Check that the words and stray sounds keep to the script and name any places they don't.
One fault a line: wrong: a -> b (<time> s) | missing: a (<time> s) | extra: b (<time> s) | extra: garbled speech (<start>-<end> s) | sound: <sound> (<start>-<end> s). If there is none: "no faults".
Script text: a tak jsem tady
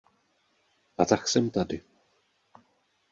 no faults